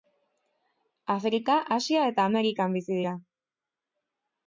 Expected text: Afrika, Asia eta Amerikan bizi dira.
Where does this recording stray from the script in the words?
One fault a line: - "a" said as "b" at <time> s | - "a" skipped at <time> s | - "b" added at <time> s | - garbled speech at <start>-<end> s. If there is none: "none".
none